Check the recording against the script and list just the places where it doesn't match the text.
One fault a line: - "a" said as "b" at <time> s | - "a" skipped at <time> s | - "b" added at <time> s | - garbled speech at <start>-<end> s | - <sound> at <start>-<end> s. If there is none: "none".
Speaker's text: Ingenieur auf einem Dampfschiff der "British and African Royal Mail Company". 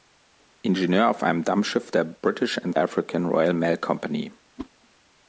- whoosh at 4.6-4.7 s